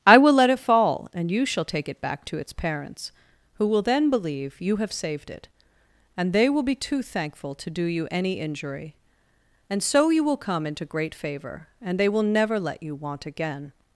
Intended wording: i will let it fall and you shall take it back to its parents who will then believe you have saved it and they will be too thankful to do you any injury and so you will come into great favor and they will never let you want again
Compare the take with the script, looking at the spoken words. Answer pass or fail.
pass